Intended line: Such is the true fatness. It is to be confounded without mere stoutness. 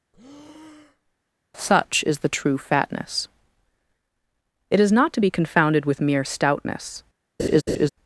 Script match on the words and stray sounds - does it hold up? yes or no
no